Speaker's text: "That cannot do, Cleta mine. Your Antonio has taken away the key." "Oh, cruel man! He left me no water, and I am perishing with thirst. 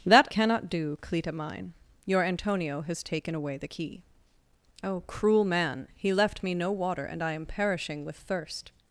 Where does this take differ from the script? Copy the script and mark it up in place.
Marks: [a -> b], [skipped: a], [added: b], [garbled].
"That cannot do, Cleta mine. Your Antonio has taken away the key." "Oh, cruel man! He left me no water, and I am perishing with thirst.